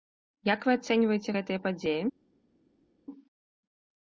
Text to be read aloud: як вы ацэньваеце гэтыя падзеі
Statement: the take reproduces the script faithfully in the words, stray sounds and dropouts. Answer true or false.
true